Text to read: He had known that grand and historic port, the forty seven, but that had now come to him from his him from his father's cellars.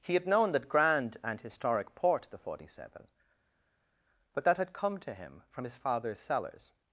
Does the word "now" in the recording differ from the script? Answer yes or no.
yes